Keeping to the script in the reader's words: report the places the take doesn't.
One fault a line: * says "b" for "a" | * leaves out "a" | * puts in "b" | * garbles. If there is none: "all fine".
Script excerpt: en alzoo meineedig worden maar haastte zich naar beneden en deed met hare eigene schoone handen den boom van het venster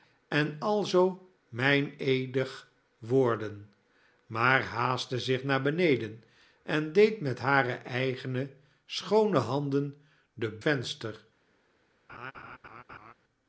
* leaves out "boom van het"